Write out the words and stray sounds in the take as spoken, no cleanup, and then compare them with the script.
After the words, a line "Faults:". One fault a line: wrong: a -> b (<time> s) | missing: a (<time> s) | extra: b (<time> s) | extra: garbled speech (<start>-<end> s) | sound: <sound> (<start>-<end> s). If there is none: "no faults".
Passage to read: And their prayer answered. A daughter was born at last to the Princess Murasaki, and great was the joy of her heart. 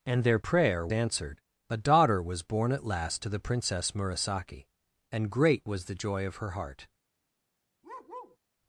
And their prayer answered. A daughter was born at last to the Princess Murasaki, and great was the joy of her heart.
Faults:
sound: bark (7.8-8.4 s)